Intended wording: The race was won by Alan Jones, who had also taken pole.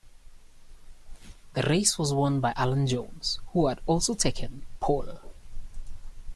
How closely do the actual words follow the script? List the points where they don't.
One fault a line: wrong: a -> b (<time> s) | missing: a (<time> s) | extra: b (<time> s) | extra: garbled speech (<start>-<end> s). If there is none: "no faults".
no faults